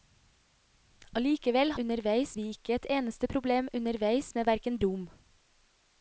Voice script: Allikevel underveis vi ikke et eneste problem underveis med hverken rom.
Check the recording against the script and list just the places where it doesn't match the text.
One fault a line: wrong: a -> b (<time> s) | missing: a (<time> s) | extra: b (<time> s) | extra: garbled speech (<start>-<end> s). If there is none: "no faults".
no faults